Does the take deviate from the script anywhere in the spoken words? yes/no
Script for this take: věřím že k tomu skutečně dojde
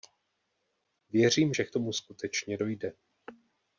no